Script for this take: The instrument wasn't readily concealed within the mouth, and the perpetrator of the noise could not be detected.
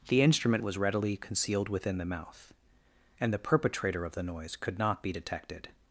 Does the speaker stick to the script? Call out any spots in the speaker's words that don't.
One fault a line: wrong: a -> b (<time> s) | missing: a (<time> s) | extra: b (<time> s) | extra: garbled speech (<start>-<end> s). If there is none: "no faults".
wrong: wasn't -> was (0.6 s)